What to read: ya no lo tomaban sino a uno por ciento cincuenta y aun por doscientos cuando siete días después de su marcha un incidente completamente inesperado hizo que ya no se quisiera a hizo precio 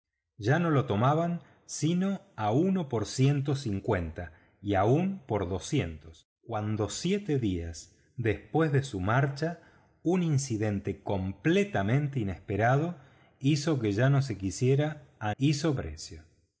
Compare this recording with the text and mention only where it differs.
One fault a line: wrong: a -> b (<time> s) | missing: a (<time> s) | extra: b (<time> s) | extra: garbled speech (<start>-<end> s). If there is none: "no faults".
no faults